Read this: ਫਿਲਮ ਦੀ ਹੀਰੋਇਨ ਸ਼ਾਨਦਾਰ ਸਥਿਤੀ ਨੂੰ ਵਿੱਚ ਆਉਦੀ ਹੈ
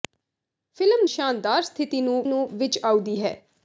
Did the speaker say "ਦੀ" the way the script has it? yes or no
no